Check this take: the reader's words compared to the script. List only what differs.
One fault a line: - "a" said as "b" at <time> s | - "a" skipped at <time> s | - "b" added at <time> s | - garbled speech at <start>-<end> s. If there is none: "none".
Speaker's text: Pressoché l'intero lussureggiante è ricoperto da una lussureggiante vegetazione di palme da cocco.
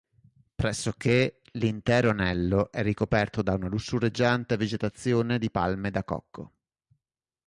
- "lussureggiante" said as "anello" at 2.1 s